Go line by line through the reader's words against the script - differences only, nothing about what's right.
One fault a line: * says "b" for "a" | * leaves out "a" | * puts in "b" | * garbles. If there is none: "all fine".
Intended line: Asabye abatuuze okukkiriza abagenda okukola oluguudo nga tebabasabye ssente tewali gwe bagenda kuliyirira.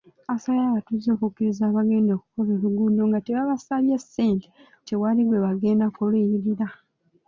all fine